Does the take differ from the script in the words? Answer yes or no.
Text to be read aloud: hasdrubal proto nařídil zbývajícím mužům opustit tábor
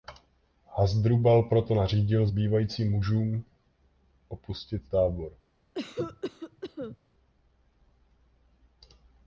no